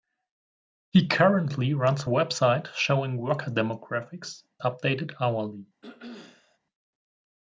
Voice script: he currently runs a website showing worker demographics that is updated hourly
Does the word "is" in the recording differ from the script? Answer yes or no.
yes